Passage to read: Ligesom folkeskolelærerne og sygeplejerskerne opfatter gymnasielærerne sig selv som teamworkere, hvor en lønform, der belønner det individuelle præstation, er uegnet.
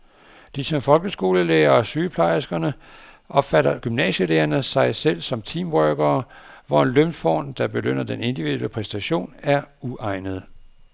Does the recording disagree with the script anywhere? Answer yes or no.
yes